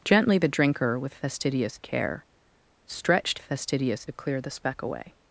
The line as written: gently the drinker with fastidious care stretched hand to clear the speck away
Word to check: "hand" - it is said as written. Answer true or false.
false